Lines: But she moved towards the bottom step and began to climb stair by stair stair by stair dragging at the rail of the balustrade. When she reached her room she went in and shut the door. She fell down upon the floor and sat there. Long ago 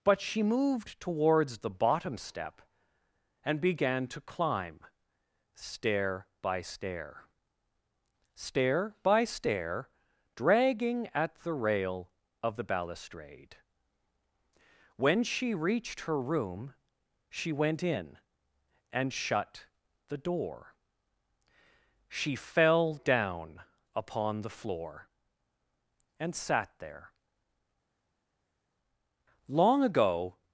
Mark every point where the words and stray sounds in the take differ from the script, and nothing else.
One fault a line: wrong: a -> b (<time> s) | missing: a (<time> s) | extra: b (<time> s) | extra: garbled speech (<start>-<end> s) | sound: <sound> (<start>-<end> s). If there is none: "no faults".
no faults